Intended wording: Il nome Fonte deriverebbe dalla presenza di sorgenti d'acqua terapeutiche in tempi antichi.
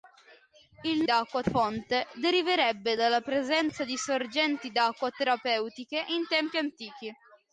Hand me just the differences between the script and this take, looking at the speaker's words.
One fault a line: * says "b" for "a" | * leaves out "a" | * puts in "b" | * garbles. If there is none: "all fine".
* says "d'acqua" for "nome"